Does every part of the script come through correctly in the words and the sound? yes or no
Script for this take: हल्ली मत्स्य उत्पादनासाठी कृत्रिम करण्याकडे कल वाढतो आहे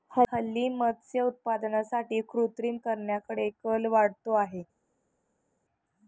yes